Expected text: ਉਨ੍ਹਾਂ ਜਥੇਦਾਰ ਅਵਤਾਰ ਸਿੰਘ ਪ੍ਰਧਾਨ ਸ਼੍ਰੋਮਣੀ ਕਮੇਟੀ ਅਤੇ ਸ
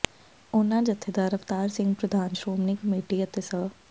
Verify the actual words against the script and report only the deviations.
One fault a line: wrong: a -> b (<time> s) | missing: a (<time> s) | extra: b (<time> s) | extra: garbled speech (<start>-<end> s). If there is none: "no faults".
no faults